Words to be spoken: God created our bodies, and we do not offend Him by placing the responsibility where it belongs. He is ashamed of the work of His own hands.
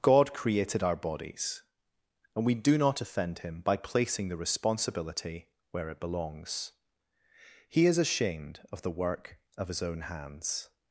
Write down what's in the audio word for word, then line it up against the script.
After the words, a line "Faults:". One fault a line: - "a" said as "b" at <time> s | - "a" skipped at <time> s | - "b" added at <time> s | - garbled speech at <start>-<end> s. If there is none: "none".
God created our bodies, and we do not offend Him by placing the responsibility where it belongs. He is ashamed of the work of His own hands.
Faults:
none